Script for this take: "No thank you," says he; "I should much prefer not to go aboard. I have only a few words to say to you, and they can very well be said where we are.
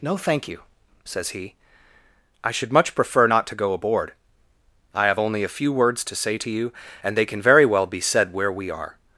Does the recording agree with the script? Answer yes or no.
yes